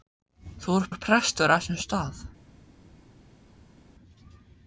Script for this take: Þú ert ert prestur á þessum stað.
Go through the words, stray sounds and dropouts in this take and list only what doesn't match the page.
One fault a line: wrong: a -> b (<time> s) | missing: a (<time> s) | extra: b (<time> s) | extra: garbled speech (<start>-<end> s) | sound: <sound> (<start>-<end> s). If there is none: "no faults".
no faults